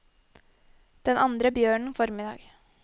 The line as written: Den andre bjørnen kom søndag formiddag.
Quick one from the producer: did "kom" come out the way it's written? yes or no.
no